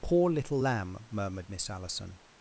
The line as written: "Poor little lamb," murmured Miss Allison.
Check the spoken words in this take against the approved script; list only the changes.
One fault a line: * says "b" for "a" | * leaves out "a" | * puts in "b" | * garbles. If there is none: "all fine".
all fine